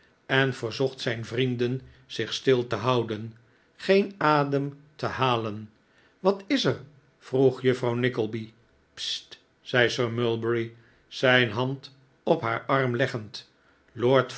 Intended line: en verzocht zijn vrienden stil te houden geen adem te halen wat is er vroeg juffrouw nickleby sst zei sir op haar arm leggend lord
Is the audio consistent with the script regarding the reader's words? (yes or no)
no